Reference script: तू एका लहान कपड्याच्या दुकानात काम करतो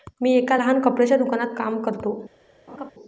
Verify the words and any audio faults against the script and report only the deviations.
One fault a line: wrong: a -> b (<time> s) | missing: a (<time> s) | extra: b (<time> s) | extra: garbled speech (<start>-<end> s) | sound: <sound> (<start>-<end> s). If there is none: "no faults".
wrong: तू -> मी (0.2 s)
sound: laugh (2.7-2.9 s)